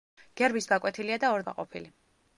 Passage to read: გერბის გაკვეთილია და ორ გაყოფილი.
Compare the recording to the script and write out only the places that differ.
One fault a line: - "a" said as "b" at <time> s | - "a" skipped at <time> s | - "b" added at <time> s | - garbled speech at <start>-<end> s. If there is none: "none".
none